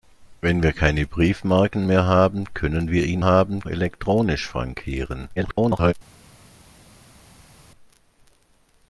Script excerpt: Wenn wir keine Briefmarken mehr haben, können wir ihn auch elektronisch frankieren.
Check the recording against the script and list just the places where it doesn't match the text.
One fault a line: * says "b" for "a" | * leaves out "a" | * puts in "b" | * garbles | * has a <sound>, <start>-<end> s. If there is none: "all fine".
* says "haben" for "auch"
* garbles